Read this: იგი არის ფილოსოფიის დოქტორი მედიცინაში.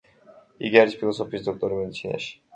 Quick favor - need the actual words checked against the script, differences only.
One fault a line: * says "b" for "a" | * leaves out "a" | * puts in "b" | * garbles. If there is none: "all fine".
all fine